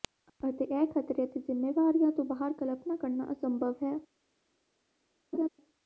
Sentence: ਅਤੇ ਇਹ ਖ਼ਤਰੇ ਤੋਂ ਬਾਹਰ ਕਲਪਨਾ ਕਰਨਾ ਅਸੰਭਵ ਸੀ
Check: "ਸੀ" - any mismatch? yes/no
yes